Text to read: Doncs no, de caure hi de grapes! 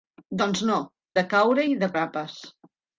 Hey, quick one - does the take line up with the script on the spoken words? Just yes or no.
yes